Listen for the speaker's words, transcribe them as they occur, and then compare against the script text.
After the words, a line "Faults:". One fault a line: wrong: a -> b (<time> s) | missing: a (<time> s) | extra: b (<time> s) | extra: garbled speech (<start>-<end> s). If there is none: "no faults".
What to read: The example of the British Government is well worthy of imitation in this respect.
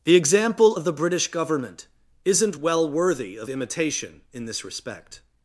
The example of the British Government isn't well worthy of imitation in this respect.
Faults:
wrong: is -> isn't (2.2 s)